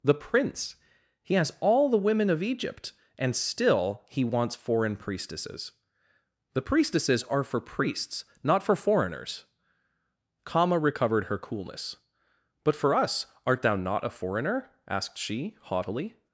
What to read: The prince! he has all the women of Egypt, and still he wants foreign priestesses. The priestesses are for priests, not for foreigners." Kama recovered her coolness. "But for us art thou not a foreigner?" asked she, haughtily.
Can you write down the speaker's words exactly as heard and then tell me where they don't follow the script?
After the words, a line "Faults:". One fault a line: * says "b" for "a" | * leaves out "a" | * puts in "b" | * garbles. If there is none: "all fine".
The prince! he has all the women of Egypt, and still he wants foreign priestesses. The priestesses are for priests, not for foreigners." Kama recovered her coolness. "But for us art thou not a foreigner?" asked she, haughtily.
Faults:
all fine